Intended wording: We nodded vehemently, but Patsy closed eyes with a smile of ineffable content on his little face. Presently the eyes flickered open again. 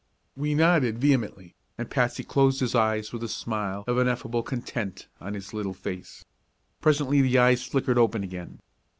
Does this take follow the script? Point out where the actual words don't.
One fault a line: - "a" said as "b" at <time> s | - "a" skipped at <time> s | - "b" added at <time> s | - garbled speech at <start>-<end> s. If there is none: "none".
- "but" said as "and" at 1.8 s
- "his" added at 2.6 s